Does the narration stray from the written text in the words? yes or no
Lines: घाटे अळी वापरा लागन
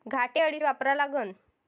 no